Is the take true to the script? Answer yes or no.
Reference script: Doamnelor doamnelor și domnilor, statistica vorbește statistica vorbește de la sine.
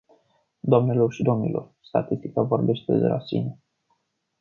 no